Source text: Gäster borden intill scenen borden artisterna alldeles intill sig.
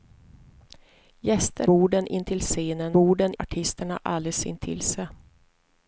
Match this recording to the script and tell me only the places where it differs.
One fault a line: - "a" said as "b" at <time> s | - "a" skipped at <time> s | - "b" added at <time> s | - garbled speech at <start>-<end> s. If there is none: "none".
none